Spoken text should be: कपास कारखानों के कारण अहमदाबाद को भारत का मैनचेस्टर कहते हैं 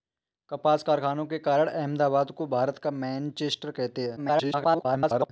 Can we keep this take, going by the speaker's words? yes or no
no